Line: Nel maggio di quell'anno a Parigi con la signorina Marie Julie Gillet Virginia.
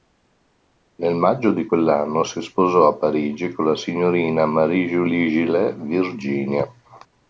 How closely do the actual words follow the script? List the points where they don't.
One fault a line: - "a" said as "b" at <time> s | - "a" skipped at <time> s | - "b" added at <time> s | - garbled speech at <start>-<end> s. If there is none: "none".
- "si sposò" added at 2.2 s